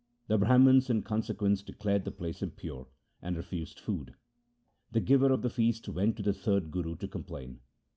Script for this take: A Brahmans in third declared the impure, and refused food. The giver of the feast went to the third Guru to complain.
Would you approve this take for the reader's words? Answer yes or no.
no